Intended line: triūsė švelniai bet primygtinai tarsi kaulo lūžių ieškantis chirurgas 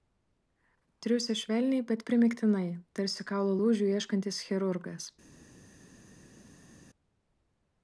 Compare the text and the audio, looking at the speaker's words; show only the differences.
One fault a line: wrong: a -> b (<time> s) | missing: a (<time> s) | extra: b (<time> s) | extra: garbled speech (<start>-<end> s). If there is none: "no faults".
no faults